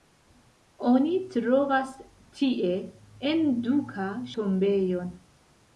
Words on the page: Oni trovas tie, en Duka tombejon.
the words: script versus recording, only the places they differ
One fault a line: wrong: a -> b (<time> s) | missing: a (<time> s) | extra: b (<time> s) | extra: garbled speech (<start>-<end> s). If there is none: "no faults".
no faults